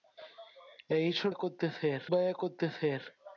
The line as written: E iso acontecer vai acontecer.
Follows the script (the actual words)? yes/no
yes